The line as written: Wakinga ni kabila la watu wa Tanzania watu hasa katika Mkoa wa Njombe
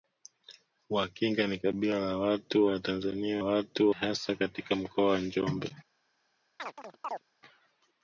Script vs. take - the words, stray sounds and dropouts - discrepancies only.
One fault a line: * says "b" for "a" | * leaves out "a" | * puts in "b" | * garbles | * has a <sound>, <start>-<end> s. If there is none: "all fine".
* has a chirp, 6.6-7.2 s